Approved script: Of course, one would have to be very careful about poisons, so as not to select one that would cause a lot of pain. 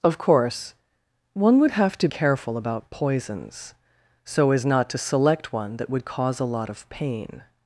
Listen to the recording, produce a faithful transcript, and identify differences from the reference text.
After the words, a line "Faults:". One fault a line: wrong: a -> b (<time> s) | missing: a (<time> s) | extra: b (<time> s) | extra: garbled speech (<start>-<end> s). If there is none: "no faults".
Of course, one would have to careful about poisons, so as not to select one that would cause a lot of pain.
Faults:
missing: be very (2.1 s)